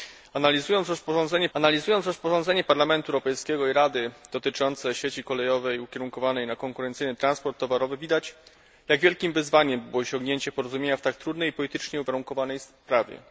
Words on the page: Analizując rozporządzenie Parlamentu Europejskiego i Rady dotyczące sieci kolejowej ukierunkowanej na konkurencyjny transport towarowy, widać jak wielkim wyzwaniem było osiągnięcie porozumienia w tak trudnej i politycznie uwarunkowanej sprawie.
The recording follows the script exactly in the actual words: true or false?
false